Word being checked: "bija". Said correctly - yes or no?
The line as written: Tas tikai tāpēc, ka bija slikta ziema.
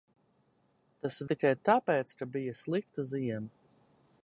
yes